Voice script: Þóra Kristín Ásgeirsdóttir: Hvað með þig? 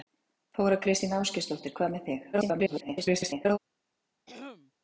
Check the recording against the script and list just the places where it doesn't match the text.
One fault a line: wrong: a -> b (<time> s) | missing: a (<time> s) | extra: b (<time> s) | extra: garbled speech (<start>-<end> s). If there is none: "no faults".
extra: garbled speech (2.3-3.6 s)